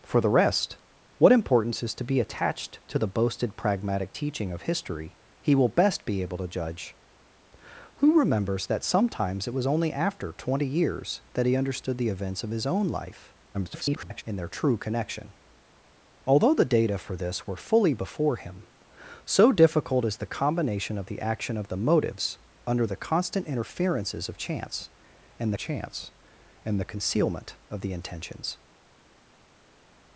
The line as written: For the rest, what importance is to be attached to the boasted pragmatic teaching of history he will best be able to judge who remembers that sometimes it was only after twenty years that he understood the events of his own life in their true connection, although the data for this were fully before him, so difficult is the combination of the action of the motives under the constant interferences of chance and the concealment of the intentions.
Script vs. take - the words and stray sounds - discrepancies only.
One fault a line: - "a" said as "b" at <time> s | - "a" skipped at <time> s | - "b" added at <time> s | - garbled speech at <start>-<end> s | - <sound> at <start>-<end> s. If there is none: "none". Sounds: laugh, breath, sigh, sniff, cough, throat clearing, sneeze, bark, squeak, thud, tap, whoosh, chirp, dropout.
- garbled speech at 13.5-14.2 s
- "chance and" added at 25.6 s